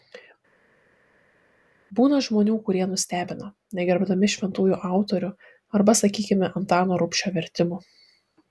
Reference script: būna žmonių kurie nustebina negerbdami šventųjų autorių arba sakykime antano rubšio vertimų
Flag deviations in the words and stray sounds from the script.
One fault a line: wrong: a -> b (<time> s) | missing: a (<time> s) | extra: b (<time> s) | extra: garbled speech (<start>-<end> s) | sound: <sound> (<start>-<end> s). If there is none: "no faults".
no faults